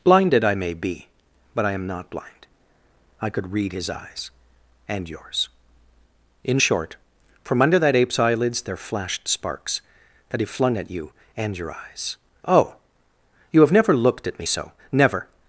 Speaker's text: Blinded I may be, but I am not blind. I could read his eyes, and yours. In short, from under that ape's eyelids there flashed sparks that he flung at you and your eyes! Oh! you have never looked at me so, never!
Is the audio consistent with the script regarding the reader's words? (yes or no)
yes